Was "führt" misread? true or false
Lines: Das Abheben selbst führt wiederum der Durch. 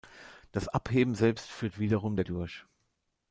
false